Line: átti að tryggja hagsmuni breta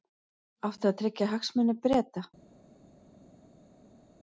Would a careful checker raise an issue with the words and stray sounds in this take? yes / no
no